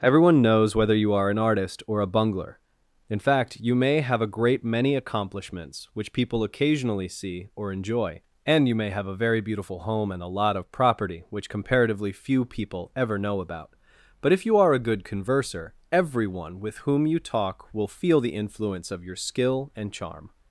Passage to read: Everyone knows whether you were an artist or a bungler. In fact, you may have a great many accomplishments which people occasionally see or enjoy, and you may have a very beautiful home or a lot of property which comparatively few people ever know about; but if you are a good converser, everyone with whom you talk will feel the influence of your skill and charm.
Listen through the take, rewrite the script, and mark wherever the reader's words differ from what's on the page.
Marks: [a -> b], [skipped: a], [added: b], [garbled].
Everyone knows whether you [were -> are] an artist or a bungler. In fact, you may have a great many accomplishments which people occasionally see or enjoy, and you may have a very beautiful home [or -> and] a lot of property which comparatively few people ever know about; but if you are a good converser, everyone with whom you talk will feel the influence of your skill and charm.